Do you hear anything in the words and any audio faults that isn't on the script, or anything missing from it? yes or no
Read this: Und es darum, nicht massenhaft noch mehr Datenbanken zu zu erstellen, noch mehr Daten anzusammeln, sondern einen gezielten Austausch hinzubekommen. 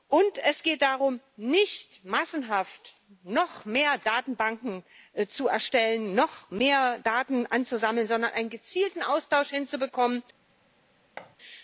yes